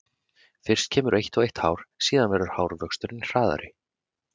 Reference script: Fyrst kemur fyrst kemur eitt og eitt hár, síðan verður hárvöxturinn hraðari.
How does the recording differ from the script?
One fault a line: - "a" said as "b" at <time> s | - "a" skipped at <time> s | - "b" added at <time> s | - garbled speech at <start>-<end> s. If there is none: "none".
- "fyrst kemur" skipped at 1.2 s